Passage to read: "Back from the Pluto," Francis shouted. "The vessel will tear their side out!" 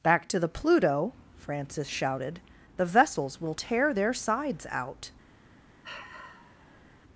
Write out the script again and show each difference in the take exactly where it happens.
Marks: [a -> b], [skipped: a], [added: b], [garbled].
"Back [from -> to] the Pluto," Francis shouted. "The [vessel -> vessels] will tear their [side -> sides] out!"